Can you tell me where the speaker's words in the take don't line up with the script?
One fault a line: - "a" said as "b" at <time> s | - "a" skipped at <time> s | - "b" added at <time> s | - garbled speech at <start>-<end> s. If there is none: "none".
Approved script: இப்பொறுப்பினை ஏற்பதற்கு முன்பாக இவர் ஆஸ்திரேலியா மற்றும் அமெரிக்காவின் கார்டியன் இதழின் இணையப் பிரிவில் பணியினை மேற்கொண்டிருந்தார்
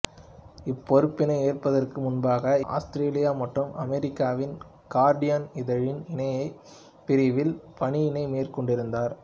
- "இவர்" skipped at 2.5 s